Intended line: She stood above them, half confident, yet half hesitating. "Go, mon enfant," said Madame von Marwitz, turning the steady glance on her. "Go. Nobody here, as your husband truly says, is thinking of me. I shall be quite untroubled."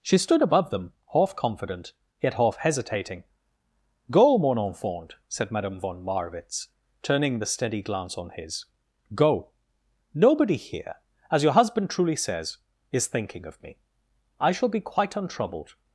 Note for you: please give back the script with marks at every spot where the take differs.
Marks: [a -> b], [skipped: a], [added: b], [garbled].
She stood above them, half confident, yet half hesitating. "Go, mon enfant," said Madame von Marwitz, turning the steady glance on [her. -> his] "Go. Nobody here, as your husband truly says, is thinking of me. I shall be quite untroubled."